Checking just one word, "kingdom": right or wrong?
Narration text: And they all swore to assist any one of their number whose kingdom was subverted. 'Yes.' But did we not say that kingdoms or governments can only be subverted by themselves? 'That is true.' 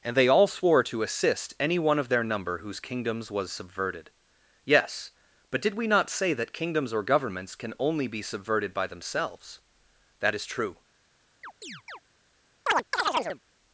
wrong